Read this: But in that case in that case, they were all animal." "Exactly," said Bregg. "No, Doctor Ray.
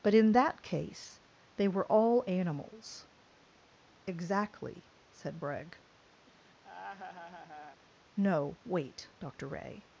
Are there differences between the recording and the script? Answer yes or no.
yes